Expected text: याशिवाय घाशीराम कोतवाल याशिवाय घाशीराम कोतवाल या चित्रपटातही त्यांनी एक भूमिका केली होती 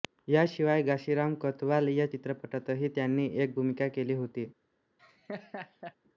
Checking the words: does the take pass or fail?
fail